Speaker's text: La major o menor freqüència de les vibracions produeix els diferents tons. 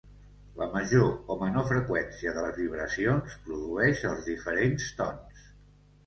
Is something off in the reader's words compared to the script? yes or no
no